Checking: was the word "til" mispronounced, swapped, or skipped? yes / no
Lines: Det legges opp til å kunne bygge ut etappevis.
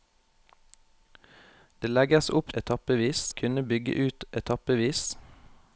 yes